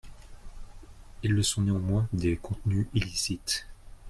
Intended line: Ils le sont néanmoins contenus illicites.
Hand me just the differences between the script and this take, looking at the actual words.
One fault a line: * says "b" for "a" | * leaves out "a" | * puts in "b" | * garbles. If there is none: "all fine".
* puts in "des"